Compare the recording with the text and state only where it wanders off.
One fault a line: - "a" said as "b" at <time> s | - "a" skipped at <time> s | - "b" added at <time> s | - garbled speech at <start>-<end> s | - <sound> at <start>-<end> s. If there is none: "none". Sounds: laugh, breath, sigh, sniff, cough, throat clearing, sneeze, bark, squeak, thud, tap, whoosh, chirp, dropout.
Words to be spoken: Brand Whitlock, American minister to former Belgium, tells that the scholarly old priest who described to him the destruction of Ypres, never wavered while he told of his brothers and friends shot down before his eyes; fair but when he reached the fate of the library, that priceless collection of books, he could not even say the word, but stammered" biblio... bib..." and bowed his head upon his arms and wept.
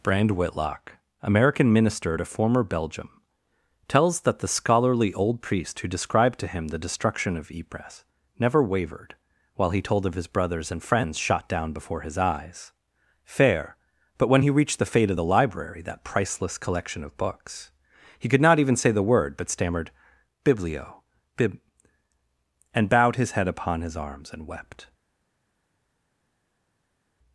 none